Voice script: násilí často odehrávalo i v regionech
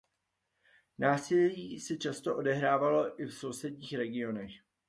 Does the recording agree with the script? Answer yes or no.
no